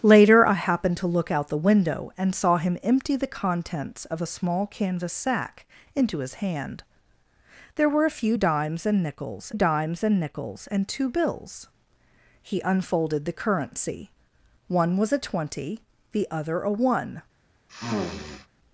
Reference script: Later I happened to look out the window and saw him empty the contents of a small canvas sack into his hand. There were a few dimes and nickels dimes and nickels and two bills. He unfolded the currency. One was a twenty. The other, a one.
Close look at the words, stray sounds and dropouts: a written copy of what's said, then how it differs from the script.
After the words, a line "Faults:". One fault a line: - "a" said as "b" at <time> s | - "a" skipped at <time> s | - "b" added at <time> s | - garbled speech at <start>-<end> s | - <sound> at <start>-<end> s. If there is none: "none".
Later I happened to look out the window and saw him empty the contents of a small canvas sack into his hand. There were a few dimes and nickels dimes and nickels and two bills. He unfolded the currency. One was a twenty. The other, a one.
Faults:
- sniff at 17.7-18.5 s